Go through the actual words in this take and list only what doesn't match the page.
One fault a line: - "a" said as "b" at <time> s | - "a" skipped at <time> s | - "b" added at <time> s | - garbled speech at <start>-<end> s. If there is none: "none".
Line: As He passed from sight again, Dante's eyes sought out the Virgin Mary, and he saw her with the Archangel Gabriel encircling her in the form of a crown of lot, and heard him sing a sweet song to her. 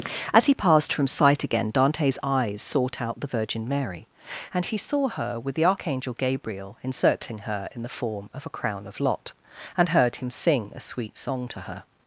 none